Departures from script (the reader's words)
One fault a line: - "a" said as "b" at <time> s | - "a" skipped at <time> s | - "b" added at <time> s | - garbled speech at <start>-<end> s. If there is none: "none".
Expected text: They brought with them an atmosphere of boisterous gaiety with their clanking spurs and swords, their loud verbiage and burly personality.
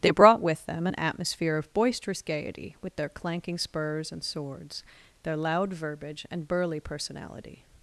none